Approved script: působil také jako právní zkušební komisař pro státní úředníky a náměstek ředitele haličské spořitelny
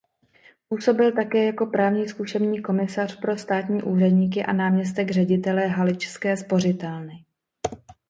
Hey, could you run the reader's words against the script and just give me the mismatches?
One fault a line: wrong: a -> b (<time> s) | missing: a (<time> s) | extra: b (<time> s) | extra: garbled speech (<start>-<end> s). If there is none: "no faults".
no faults